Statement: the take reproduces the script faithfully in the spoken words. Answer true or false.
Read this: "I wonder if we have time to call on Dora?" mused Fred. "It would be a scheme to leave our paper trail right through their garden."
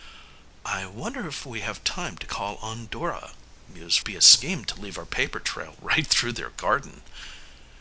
false